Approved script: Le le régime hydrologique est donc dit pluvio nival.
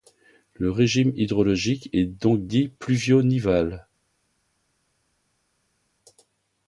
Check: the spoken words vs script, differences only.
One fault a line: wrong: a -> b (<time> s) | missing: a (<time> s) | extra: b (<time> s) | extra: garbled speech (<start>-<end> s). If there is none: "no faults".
missing: le (0.7 s)